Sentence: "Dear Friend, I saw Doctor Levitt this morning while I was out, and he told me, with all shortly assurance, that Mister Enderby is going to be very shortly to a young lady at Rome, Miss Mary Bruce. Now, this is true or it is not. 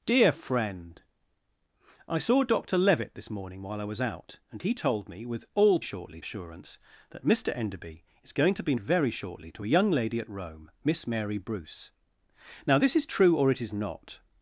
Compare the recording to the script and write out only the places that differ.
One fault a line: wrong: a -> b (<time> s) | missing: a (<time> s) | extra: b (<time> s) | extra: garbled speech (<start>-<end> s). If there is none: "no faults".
no faults